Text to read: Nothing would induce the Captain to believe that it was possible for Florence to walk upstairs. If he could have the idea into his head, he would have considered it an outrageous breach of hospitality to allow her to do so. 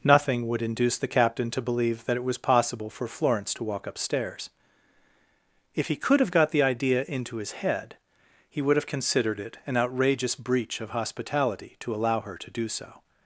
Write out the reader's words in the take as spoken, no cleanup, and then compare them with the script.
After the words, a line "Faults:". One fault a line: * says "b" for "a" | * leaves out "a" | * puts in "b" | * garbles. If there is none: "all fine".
Nothing would induce the Captain to believe that it was possible for Florence to walk upstairs. If he could have got the idea into his head, he would have considered it an outrageous breach of hospitality to allow her to do so.
Faults:
* puts in "got"